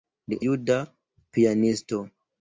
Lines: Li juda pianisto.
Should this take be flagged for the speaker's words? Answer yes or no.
no